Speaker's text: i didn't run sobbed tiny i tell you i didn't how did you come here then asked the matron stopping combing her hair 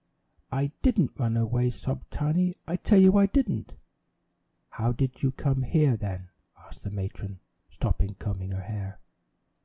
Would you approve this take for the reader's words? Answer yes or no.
no